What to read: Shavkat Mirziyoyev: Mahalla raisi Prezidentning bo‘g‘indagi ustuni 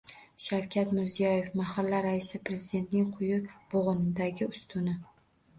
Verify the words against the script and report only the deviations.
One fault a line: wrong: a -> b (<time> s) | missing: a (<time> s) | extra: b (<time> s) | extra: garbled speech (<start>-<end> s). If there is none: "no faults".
extra: quyi (3.2 s)